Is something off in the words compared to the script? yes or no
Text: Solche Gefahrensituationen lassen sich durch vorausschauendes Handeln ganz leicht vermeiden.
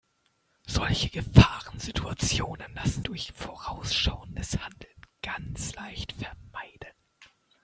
yes